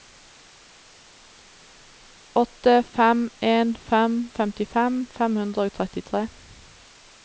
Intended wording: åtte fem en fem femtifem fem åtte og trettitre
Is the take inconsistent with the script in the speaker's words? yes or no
yes